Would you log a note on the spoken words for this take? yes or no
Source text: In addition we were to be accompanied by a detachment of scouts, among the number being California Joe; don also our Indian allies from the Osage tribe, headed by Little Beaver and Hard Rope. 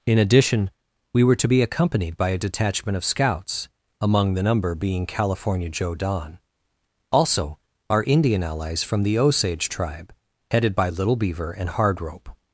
no